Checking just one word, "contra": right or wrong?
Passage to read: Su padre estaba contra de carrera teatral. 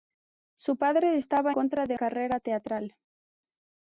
right